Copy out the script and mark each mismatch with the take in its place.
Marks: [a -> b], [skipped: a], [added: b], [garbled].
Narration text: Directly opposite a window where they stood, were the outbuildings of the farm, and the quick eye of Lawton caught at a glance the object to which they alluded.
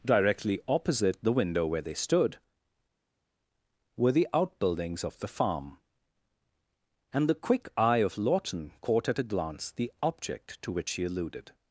Directly opposite [a -> the] window where they stood, were the outbuildings of the farm, and the quick eye of Lawton caught at a glance the object to which [they -> she] alluded.